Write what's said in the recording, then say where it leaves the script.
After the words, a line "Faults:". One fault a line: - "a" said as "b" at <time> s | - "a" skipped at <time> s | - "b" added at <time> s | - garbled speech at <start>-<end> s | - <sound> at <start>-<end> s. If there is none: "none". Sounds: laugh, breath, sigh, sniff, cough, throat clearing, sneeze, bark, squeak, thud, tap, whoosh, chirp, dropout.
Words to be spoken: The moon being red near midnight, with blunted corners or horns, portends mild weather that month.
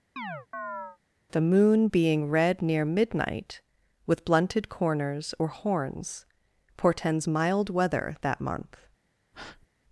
The moon being red near midnight, with blunted corners or horns, portends mild weather that month.
Faults:
- chirp at 0.2-1.0 s
- breath at 9.3-9.7 s